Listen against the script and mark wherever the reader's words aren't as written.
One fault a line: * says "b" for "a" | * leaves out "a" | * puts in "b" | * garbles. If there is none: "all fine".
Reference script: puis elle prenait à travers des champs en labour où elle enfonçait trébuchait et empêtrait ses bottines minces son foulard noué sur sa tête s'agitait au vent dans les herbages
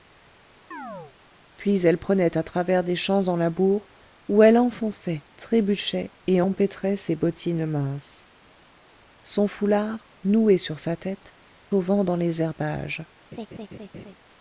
* leaves out "s'agitait"